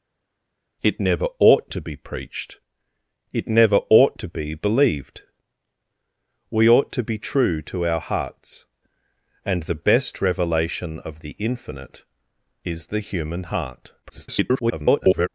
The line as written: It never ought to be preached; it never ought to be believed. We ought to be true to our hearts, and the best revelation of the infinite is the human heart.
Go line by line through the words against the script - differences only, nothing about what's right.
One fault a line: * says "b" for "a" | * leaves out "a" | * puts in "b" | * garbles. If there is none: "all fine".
* garbles